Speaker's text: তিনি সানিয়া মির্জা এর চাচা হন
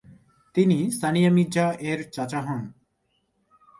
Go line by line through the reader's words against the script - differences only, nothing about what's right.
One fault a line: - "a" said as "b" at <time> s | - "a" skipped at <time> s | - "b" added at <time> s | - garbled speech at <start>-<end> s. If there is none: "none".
none